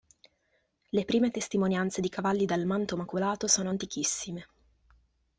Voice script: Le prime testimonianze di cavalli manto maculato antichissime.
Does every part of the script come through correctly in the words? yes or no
no